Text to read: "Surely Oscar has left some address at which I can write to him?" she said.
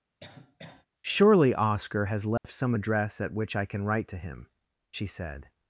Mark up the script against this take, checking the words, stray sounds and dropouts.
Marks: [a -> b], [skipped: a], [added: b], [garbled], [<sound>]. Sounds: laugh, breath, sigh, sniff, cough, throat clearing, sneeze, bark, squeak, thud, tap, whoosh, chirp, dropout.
[cough] "Surely Oscar has left [dropout] some address at which I can write to him?" she said.